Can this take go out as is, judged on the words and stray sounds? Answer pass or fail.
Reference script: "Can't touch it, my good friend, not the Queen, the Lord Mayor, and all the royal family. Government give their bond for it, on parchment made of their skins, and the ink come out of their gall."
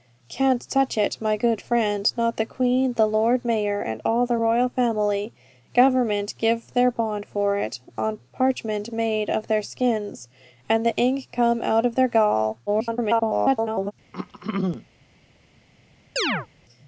fail